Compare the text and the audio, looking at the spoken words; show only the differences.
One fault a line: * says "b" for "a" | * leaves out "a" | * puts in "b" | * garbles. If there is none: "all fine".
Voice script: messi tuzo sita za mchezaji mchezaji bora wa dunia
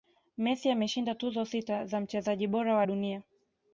* puts in "ameshinda"
* leaves out "mchezaji"